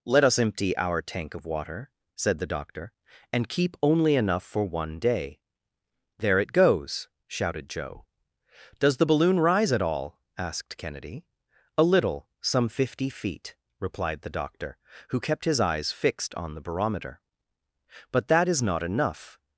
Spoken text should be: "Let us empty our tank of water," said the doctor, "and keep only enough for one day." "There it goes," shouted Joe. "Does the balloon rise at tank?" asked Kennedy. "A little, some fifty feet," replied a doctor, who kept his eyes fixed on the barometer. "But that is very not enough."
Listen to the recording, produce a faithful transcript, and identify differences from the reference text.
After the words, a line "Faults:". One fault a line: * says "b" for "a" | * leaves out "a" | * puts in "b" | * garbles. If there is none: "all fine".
"Let us empty our tank of water," said the doctor, "and keep only enough for one day." "There it goes," shouted Joe. "Does the balloon rise at all?" asked Kennedy. "A little, some fifty feet," replied the doctor, who kept his eyes fixed on the barometer. "But that is not enough."
Faults:
* says "all" for "tank"
* says "the" for "a"
* leaves out "very"